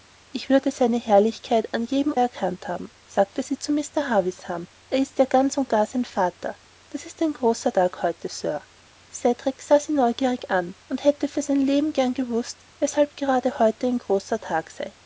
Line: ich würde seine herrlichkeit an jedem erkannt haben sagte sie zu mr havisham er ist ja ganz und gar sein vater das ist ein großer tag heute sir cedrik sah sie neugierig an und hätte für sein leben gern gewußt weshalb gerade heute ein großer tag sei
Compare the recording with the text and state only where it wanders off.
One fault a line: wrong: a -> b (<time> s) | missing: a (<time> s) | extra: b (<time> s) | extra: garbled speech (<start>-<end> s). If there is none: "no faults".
no faults